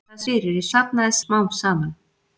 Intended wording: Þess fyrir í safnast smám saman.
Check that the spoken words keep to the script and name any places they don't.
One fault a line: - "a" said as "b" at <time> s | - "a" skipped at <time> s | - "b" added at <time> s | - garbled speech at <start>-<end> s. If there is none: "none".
none